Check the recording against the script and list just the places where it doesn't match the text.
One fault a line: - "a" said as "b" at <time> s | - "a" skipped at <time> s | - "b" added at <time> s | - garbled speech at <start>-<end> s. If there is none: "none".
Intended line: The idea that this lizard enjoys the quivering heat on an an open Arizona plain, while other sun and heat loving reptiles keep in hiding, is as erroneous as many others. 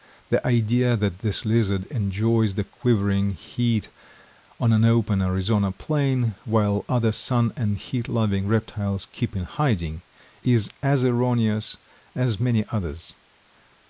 - "an" skipped at 4.8 s